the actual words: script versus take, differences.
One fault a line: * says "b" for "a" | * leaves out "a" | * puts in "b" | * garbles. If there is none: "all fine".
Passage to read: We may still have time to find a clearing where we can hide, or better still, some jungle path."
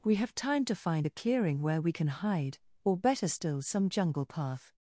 * leaves out "may still"